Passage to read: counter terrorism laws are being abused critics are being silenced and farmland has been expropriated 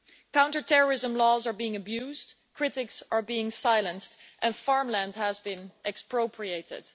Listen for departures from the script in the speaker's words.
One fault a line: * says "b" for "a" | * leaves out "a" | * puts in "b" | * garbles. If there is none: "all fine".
all fine